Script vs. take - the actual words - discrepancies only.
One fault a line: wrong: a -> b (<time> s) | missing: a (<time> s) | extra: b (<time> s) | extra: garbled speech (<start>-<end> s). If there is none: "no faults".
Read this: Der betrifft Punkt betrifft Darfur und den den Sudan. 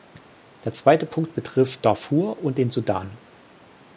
wrong: betrifft -> zweite (0.7 s)
missing: den (2.7 s)